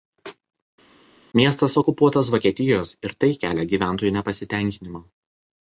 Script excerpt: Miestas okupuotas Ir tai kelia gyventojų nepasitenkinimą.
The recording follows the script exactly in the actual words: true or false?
false